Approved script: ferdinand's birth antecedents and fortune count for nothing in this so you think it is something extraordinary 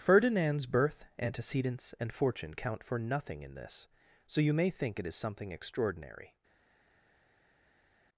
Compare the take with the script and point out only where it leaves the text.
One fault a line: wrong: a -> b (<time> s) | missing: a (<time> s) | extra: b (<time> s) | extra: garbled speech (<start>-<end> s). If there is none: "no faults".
extra: may (4.5 s)